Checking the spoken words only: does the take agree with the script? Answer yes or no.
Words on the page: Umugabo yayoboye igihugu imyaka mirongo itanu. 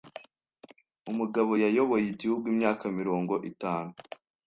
yes